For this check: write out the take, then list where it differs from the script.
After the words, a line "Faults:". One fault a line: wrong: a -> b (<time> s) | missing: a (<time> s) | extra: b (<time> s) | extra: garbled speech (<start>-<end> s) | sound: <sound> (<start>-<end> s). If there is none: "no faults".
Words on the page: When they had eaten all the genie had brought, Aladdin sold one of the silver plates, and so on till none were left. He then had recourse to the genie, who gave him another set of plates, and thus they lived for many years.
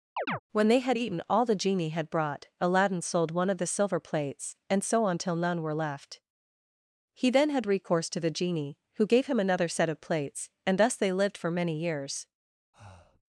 When they had eaten all the genie had brought, Aladdin sold one of the silver plates, and so on till none were left. He then had recourse to the genie, who gave him another set of plates, and thus they lived for many years.
Faults:
sound: chirp (0.2-0.4 s)
sound: breath (12.7-13.2 s)